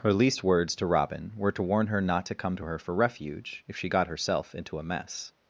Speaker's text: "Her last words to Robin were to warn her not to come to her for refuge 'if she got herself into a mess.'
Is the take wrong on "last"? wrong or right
wrong